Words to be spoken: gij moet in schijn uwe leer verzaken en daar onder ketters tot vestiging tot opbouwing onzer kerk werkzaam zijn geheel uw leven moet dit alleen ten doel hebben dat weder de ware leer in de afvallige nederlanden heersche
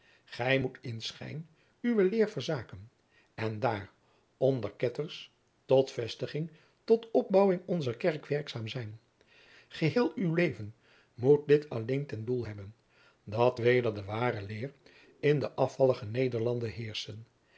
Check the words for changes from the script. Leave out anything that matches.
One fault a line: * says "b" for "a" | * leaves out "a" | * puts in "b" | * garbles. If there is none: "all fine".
all fine